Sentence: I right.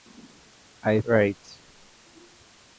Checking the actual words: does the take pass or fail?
pass